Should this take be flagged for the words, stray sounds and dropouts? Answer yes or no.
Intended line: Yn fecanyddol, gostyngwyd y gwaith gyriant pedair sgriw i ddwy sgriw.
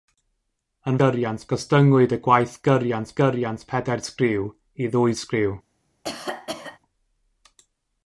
yes